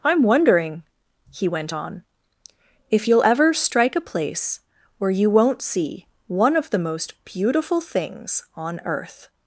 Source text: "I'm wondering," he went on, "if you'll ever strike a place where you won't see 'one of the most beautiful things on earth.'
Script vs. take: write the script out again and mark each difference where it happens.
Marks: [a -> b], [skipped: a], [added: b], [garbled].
"I'm wondering," he went on, "if you'll ever strike a place where you won't see 'one of the most beautiful things on earth.'